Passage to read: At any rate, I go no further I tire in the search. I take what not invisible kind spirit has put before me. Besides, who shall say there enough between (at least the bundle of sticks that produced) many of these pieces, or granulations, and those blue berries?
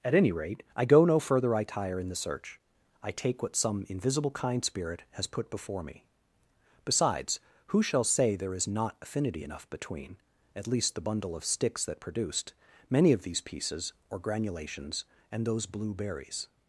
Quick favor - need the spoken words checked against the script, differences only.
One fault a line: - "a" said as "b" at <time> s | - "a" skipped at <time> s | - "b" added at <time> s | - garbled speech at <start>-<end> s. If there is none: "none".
- "not" said as "some" at 3.5 s
- "is not affinity" added at 8.6 s